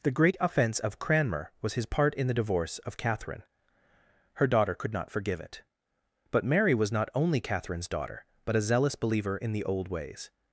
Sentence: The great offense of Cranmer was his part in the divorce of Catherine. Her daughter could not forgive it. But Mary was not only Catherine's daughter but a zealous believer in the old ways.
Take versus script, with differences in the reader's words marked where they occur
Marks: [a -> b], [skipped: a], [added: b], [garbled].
The great offense of Cranmer was his part in the divorce of Catherine. Her daughter could not forgive it. But Mary was not only Catherine's daughter but a zealous believer in the old ways.